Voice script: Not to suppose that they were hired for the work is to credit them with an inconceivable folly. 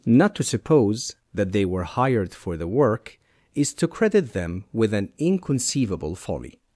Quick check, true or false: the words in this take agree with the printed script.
true